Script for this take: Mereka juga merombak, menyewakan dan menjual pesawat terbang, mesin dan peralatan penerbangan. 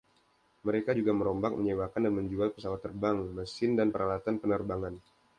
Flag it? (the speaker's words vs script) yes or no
no